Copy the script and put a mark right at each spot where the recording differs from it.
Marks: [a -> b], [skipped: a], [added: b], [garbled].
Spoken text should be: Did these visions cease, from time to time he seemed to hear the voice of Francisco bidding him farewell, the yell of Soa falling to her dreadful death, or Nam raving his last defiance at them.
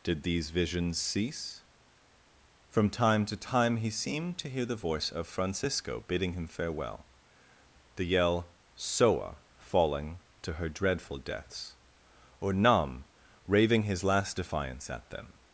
Did these visions cease, from time to time he seemed to hear the voice of Francisco bidding him farewell, the yell [skipped: of] Soa falling to her dreadful [death, -> deaths] or Nam raving his last defiance at them.